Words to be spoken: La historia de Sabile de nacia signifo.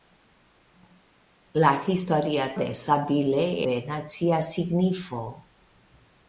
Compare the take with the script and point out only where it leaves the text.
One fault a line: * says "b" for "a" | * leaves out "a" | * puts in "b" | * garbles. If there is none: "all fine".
all fine